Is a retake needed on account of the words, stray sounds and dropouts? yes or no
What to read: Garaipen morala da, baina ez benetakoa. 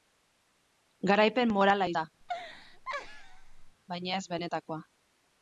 yes